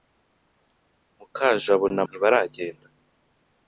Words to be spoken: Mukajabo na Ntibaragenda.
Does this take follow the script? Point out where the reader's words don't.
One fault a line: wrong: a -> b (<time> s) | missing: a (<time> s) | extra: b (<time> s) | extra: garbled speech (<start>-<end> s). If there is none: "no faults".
no faults